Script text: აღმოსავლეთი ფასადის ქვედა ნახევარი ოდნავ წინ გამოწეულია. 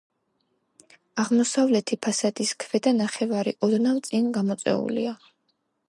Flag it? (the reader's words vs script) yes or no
no